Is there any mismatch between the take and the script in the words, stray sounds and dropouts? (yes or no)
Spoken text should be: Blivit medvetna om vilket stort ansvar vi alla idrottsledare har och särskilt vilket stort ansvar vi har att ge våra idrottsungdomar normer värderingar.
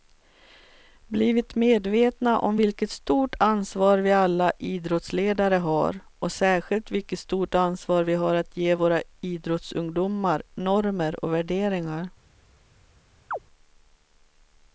yes